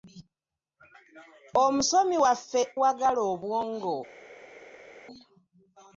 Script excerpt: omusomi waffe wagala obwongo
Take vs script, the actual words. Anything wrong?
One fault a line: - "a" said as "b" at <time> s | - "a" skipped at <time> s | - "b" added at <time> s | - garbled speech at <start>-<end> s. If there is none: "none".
none